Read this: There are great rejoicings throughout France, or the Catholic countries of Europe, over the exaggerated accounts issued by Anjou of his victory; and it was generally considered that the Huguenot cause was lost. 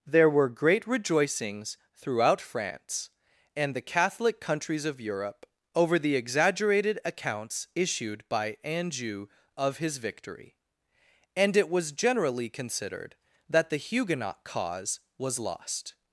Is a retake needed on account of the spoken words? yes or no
yes